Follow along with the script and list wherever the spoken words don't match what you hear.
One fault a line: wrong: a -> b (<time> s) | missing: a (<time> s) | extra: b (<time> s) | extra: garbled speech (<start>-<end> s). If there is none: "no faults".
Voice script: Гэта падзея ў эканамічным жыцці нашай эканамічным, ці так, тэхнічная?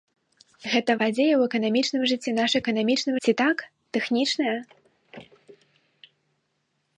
no faults